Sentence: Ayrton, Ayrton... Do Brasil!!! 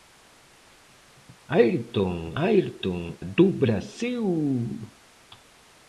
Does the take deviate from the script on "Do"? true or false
false